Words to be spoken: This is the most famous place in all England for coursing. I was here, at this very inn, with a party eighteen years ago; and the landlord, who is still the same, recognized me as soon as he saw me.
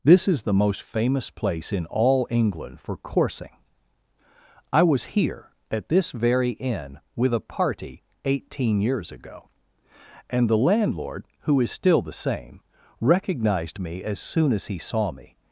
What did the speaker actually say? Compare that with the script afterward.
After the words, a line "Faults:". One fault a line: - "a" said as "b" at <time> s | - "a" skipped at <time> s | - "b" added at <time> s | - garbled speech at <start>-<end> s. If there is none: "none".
This is the most famous place in all England for coursing. I was here, at this very inn, with a party eighteen years ago; and the landlord, who is still the same, recognized me as soon as he saw me.
Faults:
none